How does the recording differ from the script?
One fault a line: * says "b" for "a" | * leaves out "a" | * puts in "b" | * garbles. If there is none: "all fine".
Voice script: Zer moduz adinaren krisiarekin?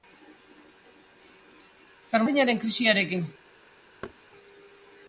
* leaves out "moduz"